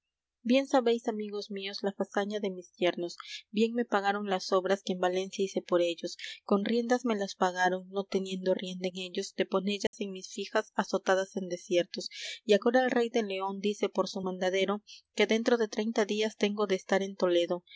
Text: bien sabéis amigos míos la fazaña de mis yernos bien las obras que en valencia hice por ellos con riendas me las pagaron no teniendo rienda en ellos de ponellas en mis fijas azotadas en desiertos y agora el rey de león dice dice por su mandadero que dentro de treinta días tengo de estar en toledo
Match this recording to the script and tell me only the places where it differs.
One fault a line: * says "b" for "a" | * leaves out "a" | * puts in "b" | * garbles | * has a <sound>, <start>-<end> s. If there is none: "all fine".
* puts in "me pagaron"
* has a dropout, 9.9-9.9 s
* leaves out "dice"